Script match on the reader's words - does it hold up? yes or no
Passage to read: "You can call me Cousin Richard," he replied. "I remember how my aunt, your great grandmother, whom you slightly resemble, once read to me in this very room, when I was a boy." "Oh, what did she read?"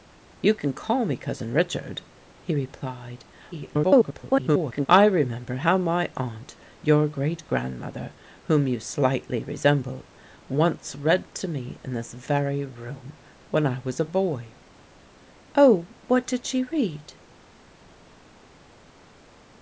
no